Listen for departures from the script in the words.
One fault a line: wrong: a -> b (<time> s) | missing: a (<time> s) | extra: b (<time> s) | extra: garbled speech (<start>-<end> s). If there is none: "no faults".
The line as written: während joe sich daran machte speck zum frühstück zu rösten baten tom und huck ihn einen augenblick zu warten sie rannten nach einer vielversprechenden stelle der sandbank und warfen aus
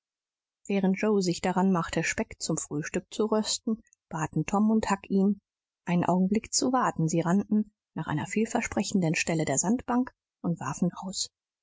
no faults